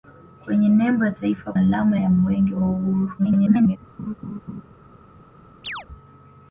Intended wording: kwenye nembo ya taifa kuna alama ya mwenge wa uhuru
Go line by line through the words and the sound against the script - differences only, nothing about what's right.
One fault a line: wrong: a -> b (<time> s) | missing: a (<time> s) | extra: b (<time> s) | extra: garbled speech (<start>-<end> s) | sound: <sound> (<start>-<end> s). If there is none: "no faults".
missing: kuna (1.5 s)
extra: garbled speech (3.2-3.8 s)
sound: laugh (4.0-4.6 s)
sound: chirp (5.6-5.9 s)